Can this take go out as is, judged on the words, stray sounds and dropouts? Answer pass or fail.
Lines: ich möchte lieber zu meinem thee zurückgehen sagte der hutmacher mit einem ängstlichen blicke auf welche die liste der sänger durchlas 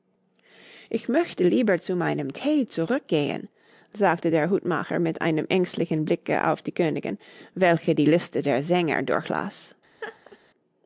fail